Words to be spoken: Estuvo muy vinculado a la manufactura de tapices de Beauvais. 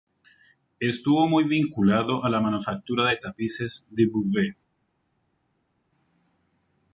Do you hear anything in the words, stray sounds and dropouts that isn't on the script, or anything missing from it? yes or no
no